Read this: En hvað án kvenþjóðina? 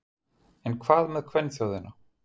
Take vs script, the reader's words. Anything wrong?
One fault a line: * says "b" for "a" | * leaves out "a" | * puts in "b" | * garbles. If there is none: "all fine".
* says "með" for "án"